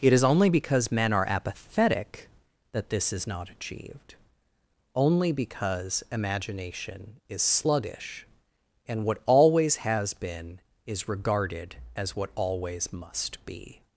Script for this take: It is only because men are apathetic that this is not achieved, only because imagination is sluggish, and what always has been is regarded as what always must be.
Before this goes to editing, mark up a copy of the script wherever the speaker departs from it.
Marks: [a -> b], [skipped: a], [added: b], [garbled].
It is only because men are apathetic that this is not achieved, only because imagination is sluggish, and what always has been is regarded as what always must be.